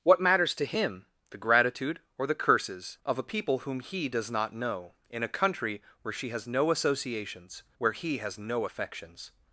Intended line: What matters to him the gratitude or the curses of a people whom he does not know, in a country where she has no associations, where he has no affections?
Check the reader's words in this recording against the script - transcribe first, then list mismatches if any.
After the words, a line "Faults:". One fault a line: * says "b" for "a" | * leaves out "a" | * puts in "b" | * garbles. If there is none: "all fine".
What matters to him the gratitude or the curses of a people whom he does not know, in a country where she has no associations, where he has no affections?
Faults:
all fine